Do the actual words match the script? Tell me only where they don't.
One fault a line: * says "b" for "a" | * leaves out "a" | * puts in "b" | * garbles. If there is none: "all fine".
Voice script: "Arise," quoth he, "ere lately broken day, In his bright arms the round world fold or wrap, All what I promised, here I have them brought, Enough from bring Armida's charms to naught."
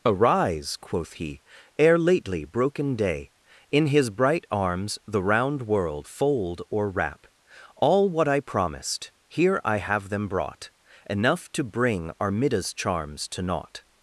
* says "to" for "from"